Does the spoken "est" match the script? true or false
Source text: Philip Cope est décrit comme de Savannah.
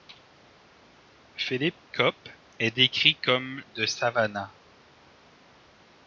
true